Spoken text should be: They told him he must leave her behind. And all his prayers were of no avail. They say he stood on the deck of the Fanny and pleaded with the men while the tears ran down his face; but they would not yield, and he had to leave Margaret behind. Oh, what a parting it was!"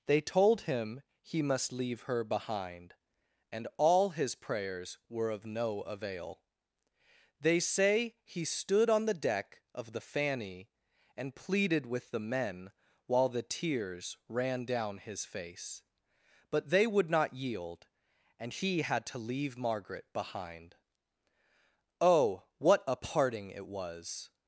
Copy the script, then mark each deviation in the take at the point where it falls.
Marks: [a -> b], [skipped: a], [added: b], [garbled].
They told him he must leave her behind. And all his prayers were of no avail. They say he stood on the deck of the Fanny and pleaded with the men while the tears ran down his face; but they would not yield, and he had to leave Margaret behind. Oh, what a parting it was!"